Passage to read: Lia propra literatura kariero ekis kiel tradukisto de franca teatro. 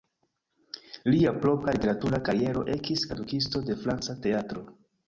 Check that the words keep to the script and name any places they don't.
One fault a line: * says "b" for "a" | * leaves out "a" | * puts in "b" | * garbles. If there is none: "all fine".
* leaves out "kiel"